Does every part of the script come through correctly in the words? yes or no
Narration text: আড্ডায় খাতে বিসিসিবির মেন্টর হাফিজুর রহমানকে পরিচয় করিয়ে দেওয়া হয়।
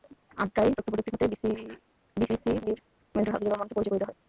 no